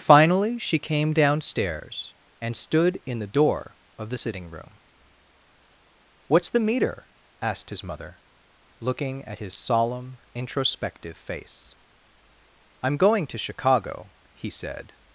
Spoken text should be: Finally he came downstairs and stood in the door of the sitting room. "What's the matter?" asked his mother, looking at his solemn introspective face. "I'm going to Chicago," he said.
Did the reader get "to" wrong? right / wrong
right